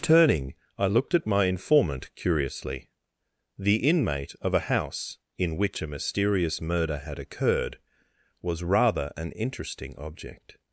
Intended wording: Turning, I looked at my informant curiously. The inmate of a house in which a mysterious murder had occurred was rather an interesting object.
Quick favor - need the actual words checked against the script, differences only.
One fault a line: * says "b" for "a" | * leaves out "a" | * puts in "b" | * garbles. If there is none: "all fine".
all fine